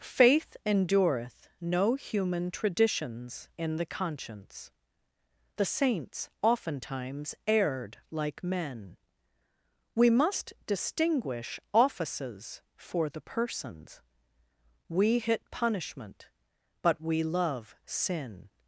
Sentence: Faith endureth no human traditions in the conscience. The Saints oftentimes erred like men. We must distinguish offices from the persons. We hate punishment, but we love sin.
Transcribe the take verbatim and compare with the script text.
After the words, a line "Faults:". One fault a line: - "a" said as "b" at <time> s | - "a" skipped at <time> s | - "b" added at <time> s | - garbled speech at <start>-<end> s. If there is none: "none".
Faith endureth no human traditions in the conscience. The Saints oftentimes erred like men. We must distinguish offices for the persons. We hit punishment, but we love sin.
Faults:
- "from" said as "for" at 12.8 s
- "hate" said as "hit" at 15.2 s